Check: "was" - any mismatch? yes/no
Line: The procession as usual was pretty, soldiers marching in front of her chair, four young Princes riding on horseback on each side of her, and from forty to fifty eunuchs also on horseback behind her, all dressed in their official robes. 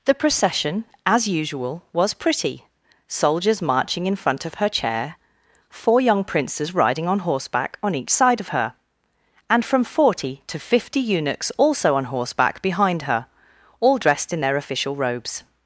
no